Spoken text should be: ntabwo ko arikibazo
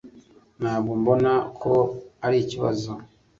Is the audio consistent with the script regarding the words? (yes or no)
no